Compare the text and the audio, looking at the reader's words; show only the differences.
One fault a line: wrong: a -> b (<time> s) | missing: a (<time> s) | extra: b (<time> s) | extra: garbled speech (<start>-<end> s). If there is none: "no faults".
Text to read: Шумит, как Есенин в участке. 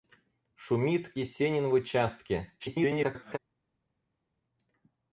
missing: как (1.1 s)
extra: garbled speech (2.6-3.4 s)